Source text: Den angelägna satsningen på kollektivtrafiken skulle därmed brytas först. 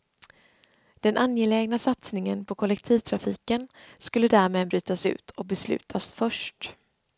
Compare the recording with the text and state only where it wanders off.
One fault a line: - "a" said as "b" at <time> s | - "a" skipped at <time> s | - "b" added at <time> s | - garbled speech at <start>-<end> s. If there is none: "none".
- "ut och beslutas" added at 5.0 s